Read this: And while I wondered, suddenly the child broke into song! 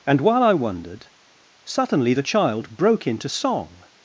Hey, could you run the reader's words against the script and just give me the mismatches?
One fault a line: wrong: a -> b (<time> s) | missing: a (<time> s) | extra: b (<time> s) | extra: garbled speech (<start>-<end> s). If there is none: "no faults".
no faults